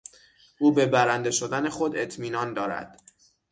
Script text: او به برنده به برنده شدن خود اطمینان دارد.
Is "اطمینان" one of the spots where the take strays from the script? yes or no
no